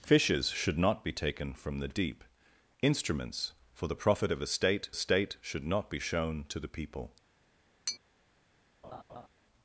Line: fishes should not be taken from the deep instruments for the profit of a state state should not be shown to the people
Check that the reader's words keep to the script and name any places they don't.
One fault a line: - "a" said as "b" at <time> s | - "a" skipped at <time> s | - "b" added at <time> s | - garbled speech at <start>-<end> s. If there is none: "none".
none